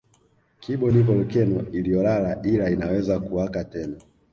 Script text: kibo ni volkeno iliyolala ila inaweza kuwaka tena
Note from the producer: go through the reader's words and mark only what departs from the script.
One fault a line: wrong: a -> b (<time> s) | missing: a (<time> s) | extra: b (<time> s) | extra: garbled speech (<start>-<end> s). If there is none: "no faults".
no faults